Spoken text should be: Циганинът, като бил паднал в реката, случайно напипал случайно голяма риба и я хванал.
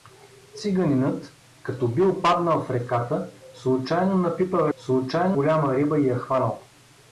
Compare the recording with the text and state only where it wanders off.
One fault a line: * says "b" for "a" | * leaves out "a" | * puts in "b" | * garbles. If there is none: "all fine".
all fine